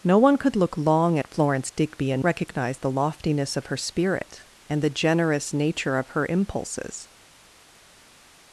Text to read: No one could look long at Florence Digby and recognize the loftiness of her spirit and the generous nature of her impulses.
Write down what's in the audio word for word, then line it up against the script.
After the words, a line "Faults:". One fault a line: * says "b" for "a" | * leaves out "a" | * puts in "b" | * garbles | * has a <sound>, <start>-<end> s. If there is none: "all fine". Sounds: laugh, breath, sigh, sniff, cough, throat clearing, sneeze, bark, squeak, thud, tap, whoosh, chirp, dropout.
No one could look long at Florence Digby and recognize the loftiness of her spirit and the generous nature of her impulses.
Faults:
all fine